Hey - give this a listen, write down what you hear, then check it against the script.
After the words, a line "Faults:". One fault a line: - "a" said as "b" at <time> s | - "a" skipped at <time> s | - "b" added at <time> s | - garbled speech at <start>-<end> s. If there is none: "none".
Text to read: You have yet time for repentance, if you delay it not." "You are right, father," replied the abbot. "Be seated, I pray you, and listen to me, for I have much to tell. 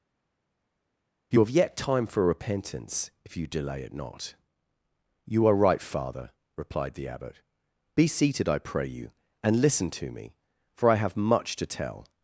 You have yet time for repentance, if you delay it not." "You are right, father," replied the abbot. "Be seated, I pray you, and listen to me, for I have much to tell.
Faults:
none